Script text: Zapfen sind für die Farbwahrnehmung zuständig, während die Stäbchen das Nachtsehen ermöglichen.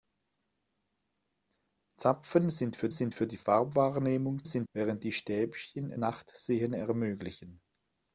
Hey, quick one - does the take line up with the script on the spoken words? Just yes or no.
no